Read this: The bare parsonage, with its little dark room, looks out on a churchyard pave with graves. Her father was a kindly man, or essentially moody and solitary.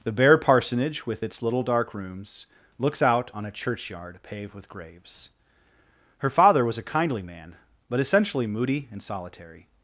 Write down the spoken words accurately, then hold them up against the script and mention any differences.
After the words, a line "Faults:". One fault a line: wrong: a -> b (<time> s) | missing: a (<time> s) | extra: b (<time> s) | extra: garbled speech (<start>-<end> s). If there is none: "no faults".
The bare parsonage, with its little dark rooms, looks out on a churchyard paved with graves. Her father was a kindly man, but essentially moody and solitary.
Faults:
wrong: room -> rooms (1.9 s)
wrong: pave -> paved (4.2 s)
wrong: or -> but (7.9 s)